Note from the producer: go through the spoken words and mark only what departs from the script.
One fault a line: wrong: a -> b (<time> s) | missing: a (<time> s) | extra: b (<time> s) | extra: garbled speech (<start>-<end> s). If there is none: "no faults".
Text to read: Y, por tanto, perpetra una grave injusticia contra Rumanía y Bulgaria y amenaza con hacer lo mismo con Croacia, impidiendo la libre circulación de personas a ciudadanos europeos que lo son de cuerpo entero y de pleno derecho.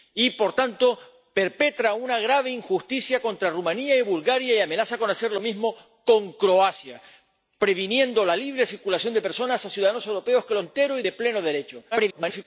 missing: son de cuerpo (10.6 s)
extra: garbled speech (11.9-12.5 s)